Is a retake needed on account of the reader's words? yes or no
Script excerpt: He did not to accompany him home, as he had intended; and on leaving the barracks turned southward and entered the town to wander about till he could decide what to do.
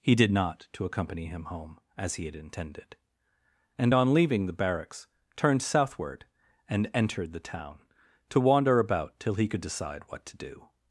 no